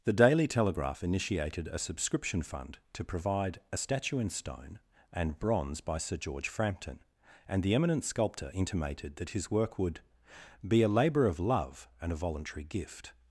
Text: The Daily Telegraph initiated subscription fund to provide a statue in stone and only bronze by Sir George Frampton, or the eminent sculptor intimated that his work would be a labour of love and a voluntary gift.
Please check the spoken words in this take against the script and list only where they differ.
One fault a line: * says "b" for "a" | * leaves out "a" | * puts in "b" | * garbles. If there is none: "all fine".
* puts in "a"
* leaves out "only"
* says "and" for "or"